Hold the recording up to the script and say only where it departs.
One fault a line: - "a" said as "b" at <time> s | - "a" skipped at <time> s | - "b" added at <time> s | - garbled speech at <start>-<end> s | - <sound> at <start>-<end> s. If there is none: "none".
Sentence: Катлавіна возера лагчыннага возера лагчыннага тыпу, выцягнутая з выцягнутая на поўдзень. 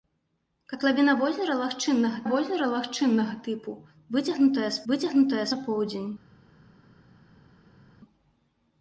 none